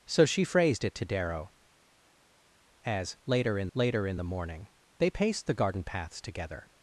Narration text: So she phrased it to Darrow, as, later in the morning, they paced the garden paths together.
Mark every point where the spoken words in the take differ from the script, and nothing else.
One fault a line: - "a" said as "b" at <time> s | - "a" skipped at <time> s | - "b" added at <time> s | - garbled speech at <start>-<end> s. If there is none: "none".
- "later in" added at 3.7 s